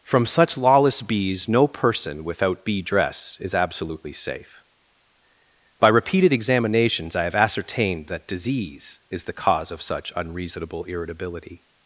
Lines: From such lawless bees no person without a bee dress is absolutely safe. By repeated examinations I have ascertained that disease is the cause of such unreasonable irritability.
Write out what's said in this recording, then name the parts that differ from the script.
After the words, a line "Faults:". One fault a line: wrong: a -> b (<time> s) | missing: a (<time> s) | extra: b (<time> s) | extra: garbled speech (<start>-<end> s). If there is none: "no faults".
From such lawless bees no person without bee dress is absolutely safe. By repeated examinations I have ascertained that disease is the cause of such unreasonable irritability.
Faults:
missing: a (2.6 s)